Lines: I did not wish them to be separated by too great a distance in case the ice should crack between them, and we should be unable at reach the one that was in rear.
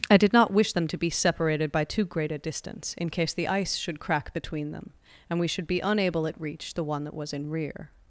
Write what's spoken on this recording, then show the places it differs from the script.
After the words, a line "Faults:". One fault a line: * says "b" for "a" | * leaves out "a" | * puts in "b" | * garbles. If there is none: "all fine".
I did not wish them to be separated by too great a distance in case the ice should crack between them, and we should be unable at reach the one that was in rear.
Faults:
all fine